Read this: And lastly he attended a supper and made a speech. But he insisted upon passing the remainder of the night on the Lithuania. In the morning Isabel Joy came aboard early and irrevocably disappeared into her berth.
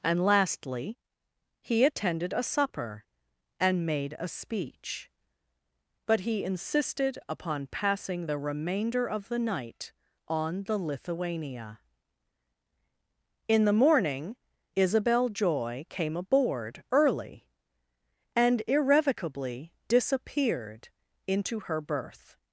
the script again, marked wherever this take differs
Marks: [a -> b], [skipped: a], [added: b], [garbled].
And lastly he attended a supper and made a speech. But he insisted upon passing the remainder of the night on the Lithuania. In the morning Isabel Joy came aboard early and irrevocably disappeared into her berth.